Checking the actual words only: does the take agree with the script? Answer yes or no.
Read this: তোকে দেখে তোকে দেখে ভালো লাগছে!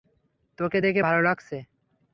no